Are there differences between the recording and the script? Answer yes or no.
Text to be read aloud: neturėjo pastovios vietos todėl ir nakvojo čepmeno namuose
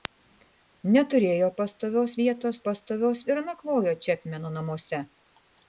yes